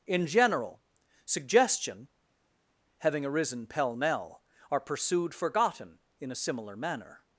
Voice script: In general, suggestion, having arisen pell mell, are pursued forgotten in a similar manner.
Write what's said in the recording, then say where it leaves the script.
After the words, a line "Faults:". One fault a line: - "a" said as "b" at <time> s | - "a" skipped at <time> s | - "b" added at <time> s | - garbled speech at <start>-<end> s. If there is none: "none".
In general, suggestion, having arisen pell mell, are pursued forgotten in a similar manner.
Faults:
none